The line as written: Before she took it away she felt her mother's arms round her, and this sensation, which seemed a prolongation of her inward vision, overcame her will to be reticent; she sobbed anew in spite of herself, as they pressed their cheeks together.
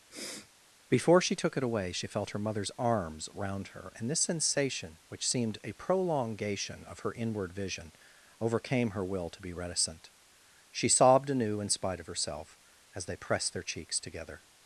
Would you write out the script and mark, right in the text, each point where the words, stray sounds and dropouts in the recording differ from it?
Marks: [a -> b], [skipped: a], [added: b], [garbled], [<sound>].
[sniff] Before she took it away she felt her mother's arms round her, and this sensation, which seemed a prolongation of her inward vision, overcame her will to be reticent; she sobbed anew in spite of herself, as they pressed their cheeks together.